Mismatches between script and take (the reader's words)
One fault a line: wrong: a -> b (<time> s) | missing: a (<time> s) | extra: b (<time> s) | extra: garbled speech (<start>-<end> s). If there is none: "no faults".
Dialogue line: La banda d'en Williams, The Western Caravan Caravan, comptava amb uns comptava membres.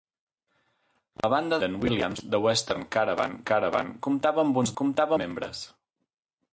no faults